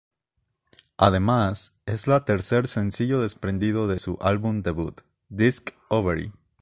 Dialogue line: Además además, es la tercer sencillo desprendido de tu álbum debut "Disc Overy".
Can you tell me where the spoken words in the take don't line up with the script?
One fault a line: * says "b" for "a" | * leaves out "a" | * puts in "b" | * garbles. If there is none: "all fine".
* leaves out "además"
* says "su" for "tu"